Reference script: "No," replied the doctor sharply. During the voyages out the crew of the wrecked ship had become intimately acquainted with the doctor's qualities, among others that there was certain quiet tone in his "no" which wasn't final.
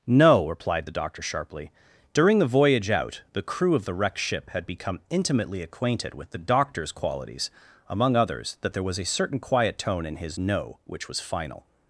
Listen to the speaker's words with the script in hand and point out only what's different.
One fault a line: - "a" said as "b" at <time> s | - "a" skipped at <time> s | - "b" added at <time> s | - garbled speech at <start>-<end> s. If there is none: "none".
- "voyages" said as "voyage" at 2.5 s
- "a" added at 9.0 s
- "wasn't" said as "was" at 11.1 s